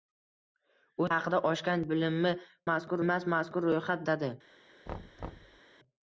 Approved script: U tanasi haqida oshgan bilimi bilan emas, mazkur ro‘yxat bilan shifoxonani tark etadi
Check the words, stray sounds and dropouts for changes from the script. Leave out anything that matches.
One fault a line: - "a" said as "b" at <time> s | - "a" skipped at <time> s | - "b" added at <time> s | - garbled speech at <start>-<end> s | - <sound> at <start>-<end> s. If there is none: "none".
- "tanasi" skipped at 1.1 s
- "bilan" said as "mazkur" at 2.7 s
- "bilan shifoxonani tark" skipped at 4.0 s
- thud at 4.9-5.6 s